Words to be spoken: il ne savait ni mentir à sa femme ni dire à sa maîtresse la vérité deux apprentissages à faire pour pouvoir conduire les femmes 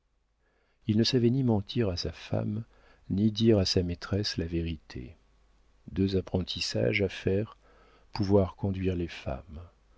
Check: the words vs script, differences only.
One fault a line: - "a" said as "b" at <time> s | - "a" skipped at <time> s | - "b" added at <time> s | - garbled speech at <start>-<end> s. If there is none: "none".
- "pour" skipped at 7.5 s